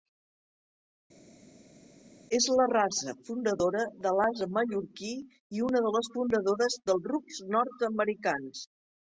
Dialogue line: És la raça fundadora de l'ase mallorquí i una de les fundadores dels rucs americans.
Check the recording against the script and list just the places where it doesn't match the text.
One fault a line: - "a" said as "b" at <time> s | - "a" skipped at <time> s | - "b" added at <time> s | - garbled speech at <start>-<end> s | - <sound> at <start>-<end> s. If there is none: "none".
- "nord" added at 7.6 s